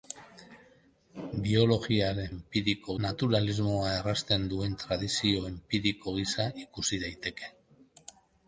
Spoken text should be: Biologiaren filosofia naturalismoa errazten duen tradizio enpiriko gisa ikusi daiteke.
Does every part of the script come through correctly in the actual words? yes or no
no